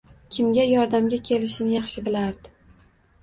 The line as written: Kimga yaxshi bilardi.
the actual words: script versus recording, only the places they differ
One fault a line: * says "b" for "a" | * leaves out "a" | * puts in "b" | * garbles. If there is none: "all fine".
* puts in "yordamga kelishini"